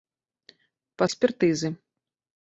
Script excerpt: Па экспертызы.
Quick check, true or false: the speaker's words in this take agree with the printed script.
true